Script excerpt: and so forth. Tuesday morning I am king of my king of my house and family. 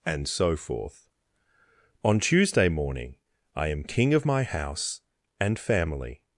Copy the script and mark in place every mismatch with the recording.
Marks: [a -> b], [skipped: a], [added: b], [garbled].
and so forth. [added: On] Tuesday morning I am king of my [skipped: king of my] house and family.